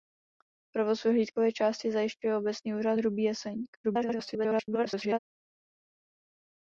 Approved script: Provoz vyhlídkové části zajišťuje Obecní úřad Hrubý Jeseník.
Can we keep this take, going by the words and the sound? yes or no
no